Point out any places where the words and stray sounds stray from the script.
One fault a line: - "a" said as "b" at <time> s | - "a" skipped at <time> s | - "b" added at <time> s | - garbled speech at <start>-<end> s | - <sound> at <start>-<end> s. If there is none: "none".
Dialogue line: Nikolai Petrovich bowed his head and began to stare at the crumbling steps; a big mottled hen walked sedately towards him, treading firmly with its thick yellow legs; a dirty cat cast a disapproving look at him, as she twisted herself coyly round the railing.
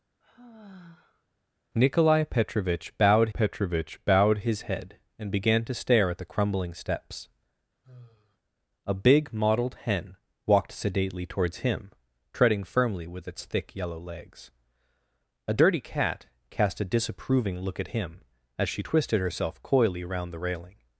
- sigh at 0.2-1.3 s
- "Petrovich bowed" added at 3.3 s
- sigh at 7.8-8.4 s